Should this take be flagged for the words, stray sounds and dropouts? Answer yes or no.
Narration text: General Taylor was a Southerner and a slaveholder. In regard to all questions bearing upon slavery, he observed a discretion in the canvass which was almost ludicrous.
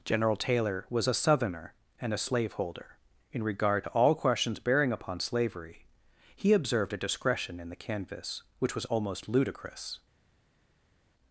no